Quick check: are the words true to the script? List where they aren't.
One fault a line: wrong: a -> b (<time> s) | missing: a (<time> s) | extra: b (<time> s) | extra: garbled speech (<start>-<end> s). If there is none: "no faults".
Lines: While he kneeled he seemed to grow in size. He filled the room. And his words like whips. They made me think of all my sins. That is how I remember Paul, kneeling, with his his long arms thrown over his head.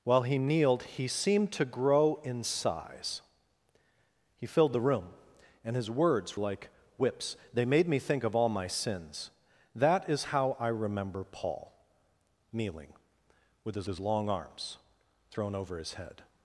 no faults